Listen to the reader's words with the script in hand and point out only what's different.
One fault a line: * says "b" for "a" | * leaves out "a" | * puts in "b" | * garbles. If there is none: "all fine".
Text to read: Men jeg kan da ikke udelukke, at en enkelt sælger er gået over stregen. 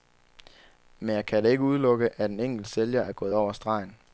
all fine